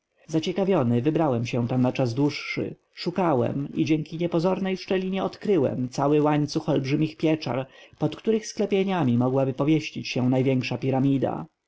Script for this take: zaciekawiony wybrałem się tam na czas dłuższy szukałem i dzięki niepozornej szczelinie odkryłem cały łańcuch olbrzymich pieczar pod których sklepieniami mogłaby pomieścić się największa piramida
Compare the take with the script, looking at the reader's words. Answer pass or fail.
pass